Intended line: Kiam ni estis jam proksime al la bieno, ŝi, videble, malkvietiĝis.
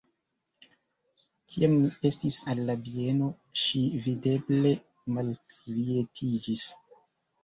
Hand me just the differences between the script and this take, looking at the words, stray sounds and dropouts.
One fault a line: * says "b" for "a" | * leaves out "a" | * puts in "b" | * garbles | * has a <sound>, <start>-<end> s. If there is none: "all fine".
* leaves out "jam proksime"